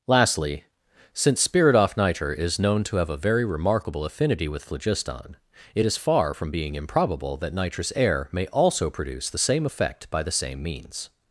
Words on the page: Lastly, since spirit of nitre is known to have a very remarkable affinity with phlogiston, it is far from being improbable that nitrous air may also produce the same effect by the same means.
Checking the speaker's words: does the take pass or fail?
fail